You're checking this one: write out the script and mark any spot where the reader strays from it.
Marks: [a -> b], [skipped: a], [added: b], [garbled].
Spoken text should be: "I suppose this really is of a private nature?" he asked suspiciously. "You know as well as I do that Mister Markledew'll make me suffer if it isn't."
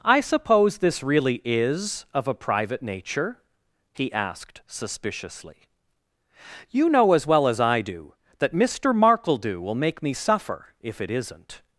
"I suppose this really is of a private nature?" he asked suspiciously. "You know as well as I do that Mister Markledew'll make me suffer if it isn't."